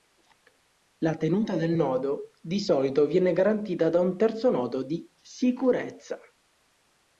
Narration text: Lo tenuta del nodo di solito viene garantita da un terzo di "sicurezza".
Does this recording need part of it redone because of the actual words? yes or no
yes